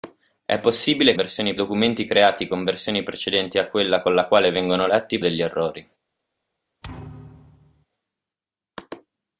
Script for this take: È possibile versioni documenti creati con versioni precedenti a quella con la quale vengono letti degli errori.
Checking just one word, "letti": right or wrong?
right